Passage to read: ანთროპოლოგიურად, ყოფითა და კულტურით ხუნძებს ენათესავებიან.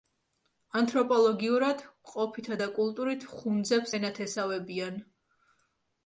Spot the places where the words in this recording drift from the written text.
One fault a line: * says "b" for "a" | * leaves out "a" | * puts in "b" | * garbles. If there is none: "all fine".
all fine